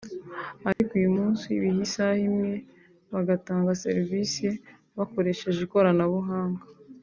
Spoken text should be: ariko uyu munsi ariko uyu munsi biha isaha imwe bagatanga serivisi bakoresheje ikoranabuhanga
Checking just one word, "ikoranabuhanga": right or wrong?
right